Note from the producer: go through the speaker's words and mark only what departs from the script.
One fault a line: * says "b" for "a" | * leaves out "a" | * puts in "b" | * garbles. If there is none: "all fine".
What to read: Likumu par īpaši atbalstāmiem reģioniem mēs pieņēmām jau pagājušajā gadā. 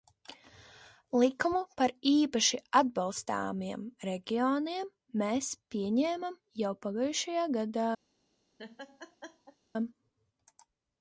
all fine